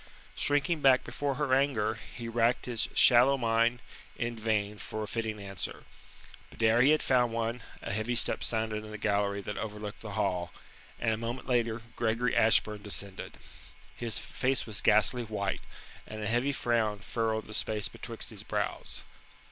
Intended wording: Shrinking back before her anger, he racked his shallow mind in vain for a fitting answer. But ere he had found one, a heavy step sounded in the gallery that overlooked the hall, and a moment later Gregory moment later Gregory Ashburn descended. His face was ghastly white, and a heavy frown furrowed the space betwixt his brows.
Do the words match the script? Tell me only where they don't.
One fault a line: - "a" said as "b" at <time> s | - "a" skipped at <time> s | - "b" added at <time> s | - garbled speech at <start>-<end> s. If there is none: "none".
- "moment later Gregory" skipped at 12.3 s